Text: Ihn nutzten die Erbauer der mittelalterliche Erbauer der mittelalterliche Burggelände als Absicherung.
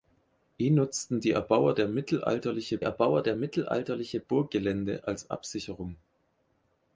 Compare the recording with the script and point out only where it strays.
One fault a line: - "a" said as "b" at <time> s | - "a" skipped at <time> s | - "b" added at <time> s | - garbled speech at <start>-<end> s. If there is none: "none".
none